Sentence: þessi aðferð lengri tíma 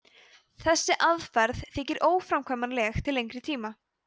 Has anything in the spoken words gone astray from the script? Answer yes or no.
yes